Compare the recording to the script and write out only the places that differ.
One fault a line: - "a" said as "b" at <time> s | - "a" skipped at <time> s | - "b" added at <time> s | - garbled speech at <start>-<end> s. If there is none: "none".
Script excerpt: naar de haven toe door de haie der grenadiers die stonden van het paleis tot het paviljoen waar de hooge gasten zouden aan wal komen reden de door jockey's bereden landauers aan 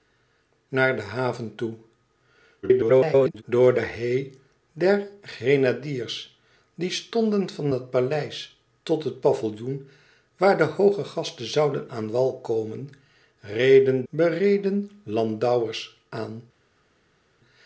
- garbled speech at 2.6-3.4 s
- "de door jockey's" skipped at 14.0 s